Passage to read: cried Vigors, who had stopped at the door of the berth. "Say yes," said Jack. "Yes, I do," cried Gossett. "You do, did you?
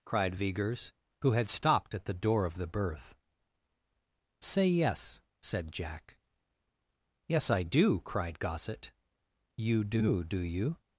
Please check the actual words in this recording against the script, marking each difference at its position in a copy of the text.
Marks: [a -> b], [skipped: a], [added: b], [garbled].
cried Vigors, who had stopped at the door of the berth. "Say yes," said Jack. "Yes, I do," cried Gossett. "You do, [did -> do] you?